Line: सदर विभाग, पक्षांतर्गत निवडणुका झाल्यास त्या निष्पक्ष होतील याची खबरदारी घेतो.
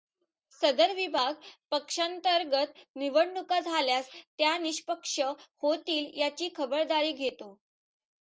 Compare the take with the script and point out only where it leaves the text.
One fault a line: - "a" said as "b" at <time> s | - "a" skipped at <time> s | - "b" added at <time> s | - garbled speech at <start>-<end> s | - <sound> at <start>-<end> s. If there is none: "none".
none